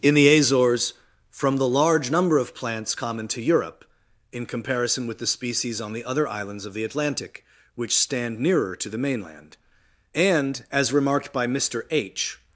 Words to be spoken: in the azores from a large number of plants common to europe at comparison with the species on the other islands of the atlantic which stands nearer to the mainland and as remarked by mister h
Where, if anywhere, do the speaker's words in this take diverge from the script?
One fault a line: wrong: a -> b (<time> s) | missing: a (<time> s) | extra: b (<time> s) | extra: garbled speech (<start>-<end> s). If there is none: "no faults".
wrong: a -> the (1.6 s)
wrong: at -> in (4.3 s)
wrong: stands -> stand (8.0 s)